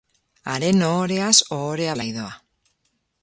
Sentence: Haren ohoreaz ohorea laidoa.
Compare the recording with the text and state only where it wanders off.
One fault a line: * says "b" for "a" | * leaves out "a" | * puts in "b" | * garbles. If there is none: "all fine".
all fine